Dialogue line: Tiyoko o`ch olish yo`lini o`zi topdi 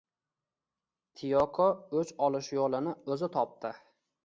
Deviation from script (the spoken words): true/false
false